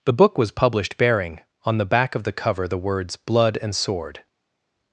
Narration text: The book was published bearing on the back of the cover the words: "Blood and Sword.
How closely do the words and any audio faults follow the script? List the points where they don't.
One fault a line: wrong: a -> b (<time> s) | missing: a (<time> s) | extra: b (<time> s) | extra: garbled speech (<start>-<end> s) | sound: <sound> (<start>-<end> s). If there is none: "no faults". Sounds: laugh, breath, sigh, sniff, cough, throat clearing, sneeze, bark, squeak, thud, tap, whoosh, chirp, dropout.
no faults